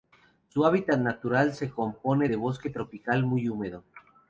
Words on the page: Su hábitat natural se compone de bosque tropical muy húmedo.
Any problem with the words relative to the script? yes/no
no